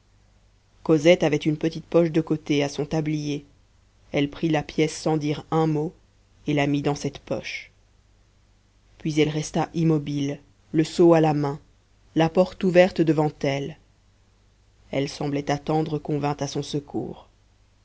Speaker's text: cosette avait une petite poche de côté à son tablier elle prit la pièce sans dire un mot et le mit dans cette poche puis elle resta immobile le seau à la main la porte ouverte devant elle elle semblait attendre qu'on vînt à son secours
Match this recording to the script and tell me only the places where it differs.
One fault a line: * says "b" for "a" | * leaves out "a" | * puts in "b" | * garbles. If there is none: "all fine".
* says "la" for "le"